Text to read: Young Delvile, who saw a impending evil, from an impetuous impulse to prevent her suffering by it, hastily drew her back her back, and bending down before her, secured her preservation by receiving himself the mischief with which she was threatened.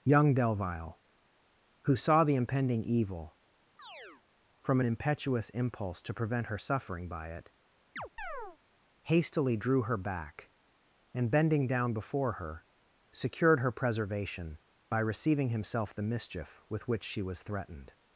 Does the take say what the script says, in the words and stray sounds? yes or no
no